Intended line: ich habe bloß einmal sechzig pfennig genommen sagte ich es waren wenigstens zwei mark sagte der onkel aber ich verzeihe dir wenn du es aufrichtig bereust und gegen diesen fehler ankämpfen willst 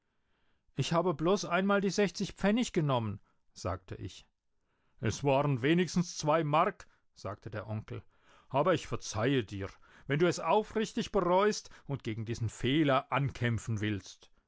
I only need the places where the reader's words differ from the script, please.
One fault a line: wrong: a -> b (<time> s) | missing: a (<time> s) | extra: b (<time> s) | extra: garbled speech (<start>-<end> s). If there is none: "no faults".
extra: die (1.8 s)